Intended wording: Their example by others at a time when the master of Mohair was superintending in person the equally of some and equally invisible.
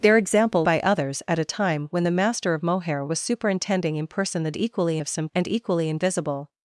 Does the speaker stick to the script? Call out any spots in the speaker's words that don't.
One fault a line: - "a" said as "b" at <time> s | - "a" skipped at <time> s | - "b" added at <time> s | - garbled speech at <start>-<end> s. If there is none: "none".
none